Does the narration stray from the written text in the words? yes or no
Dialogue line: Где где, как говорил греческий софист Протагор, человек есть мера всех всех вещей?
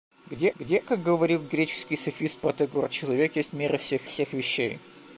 no